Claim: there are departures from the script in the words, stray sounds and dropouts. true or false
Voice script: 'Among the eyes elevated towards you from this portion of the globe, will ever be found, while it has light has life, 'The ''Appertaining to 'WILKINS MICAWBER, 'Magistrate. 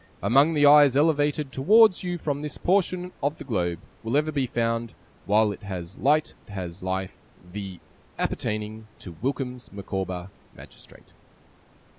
false